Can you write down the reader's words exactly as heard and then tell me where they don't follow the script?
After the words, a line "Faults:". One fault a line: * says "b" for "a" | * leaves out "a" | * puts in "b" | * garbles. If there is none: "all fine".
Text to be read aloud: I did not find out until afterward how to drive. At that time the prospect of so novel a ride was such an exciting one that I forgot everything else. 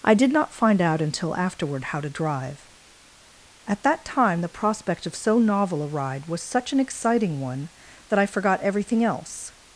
I did not find out until afterward how to drive. At that time the prospect of so novel a ride was such an exciting one that I forgot everything else.
Faults:
all fine